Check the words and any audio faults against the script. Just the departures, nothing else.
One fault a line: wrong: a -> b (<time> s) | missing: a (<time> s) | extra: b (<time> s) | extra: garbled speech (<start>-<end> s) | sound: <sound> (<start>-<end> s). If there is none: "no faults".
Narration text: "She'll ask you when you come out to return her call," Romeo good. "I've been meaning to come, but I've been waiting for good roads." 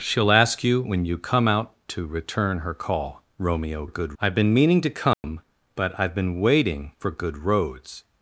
sound: dropout (5.1-5.2 s)